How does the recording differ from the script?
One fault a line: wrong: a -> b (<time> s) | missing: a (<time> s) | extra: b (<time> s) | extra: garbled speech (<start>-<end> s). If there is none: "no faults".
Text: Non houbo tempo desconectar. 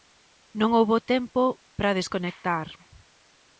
extra: para (1.8 s)